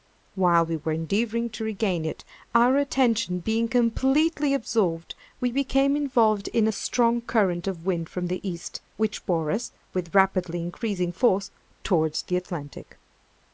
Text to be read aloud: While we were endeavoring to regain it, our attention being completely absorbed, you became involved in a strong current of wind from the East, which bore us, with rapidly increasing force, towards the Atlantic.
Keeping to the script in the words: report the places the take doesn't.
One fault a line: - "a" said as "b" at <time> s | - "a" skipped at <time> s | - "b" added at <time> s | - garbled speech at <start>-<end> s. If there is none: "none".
- "you" said as "we" at 5.4 s